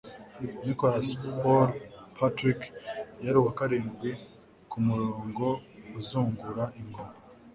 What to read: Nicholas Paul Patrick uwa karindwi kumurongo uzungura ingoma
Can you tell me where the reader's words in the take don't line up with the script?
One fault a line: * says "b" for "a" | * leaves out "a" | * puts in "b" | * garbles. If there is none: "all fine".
* puts in "yari"